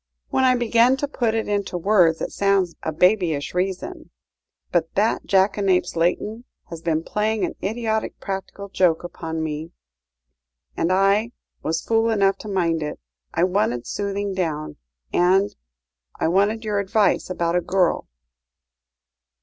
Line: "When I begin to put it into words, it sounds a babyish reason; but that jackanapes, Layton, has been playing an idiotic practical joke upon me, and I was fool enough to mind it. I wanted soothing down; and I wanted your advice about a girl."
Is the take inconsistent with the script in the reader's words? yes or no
no